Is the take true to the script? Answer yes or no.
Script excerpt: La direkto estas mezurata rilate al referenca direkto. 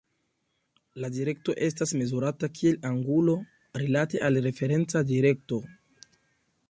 no